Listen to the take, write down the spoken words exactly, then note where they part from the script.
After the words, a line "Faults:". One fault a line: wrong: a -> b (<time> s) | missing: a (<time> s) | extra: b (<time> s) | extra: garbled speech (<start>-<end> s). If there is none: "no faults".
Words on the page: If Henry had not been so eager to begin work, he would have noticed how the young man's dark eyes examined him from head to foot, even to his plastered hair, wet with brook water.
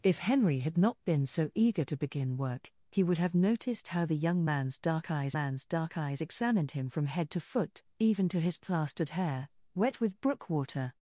If Henry had not been so eager to begin work, he would have noticed how the young man's dark eyes man's dark eyes examined him from head to foot, even to his plastered hair, wet with brook water.
Faults:
extra: man's dark eyes (5.3 s)